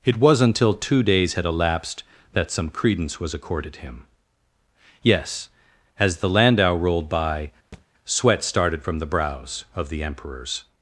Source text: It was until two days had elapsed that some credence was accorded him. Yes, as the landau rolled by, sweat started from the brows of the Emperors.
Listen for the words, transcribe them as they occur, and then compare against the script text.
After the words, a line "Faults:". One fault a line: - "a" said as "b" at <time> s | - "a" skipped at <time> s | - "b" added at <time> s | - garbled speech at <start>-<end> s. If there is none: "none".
It was until two days had elapsed that some credence was accorded him. Yes, as the landau rolled by, sweat started from the brows of the Emperors.
Faults:
none